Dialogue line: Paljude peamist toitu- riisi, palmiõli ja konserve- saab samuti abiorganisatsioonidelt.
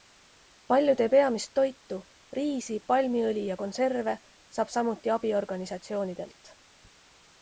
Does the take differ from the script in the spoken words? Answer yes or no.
no